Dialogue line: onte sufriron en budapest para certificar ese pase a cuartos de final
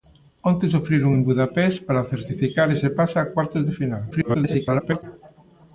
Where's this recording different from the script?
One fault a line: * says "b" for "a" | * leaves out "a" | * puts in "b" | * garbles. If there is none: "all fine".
* garbles